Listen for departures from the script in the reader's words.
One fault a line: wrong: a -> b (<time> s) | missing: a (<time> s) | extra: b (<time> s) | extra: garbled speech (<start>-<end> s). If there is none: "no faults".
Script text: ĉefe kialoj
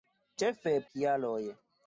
no faults